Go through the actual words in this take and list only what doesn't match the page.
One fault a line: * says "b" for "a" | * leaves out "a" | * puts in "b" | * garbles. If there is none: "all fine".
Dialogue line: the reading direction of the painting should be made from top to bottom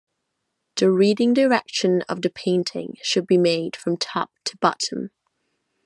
all fine